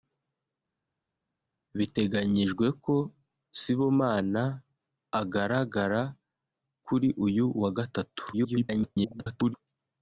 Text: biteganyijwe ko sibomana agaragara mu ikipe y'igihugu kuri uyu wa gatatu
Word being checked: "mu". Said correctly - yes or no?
no